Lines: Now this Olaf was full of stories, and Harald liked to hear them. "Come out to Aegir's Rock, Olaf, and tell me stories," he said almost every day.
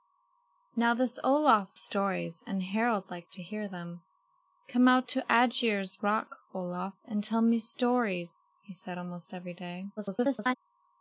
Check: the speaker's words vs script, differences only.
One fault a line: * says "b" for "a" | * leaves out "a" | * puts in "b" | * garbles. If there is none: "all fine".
* leaves out "was full of"
* garbles